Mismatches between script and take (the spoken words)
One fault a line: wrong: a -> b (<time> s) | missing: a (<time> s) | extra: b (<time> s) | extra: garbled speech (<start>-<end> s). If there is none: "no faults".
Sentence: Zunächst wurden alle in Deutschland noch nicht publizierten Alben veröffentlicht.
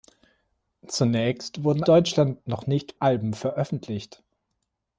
missing: alle in (1.8 s)
missing: publizierten (3.0 s)